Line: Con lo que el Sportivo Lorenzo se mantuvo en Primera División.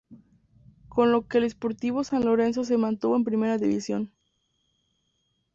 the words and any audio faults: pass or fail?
fail